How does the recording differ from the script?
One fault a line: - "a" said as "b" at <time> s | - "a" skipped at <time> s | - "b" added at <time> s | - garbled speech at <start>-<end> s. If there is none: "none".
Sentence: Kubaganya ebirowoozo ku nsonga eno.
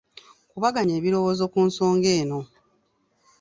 none